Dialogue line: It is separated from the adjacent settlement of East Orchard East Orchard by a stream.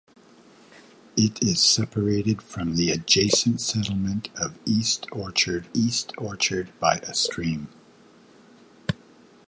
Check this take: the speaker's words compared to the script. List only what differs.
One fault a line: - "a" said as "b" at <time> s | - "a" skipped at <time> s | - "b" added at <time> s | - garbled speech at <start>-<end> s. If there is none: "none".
none